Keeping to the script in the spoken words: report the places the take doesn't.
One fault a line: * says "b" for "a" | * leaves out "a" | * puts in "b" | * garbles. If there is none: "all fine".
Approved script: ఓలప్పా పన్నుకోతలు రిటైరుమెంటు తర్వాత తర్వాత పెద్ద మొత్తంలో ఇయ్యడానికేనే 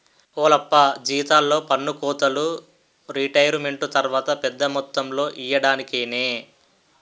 * puts in "జీతాల్లో"
* leaves out "తర్వాత"